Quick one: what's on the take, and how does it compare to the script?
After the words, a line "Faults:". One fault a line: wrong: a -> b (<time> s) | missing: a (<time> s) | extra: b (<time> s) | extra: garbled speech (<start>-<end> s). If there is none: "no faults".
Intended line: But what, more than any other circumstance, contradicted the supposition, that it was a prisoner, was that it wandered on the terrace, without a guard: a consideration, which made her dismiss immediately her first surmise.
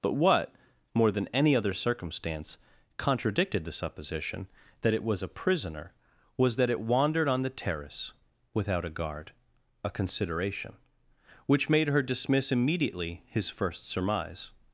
But what, more than any other circumstance, contradicted the supposition, that it was a prisoner, was that it wandered on the terrace, without a guard: a consideration, which made her dismiss immediately his first surmise.
Faults:
wrong: her -> his (13.3 s)